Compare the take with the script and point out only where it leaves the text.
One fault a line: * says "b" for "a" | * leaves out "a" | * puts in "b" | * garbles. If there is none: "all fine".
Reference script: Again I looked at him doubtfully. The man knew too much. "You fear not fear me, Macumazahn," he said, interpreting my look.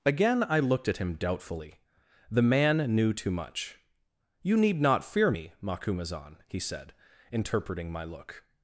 * says "need" for "fear"